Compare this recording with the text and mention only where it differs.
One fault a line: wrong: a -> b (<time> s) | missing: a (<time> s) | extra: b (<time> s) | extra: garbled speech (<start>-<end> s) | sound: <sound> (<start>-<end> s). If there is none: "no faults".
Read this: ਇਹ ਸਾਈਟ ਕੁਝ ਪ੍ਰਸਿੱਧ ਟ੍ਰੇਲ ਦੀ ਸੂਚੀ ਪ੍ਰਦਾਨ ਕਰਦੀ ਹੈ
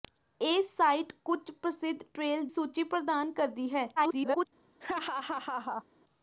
missing: ਦੀ (2.4 s)
extra: garbled speech (4.0-4.5 s)
sound: laugh (4.8-5.9 s)